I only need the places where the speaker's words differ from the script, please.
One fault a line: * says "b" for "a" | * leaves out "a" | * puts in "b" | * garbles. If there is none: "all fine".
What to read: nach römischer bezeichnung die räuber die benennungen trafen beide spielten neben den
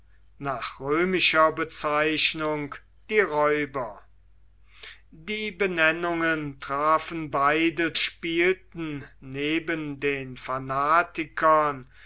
all fine